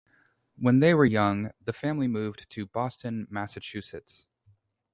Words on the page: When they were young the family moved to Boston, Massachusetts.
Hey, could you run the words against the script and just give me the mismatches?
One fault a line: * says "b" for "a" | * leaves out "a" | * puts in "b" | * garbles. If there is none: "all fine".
all fine